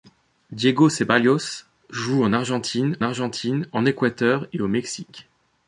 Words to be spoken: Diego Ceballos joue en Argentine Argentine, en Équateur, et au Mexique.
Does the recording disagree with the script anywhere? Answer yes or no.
no